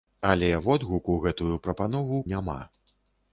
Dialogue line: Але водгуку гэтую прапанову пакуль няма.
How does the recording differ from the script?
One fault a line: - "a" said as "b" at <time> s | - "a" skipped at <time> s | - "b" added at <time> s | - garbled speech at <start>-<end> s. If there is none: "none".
- "пакуль" skipped at 2.2 s